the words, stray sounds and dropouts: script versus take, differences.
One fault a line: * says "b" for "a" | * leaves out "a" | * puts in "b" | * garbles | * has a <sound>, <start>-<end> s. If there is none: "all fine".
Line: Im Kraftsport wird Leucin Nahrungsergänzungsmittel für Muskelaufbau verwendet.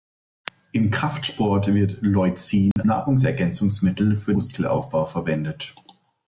* has a dropout, 2.7-2.8 s